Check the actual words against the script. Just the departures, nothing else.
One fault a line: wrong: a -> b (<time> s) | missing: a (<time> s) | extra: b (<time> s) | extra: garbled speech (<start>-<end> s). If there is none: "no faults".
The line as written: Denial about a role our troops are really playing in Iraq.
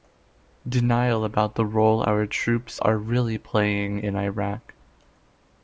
wrong: a -> the (1.5 s)